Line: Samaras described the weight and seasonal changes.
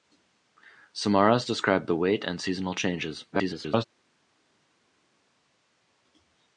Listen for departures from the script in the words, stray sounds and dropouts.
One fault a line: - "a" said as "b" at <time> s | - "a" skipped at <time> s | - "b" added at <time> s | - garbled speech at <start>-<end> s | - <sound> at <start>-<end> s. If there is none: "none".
- garbled speech at 3.3-3.8 s